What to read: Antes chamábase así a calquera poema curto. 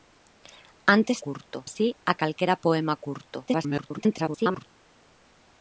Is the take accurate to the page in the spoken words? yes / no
no